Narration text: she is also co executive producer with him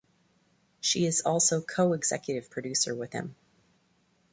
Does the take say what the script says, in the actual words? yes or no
yes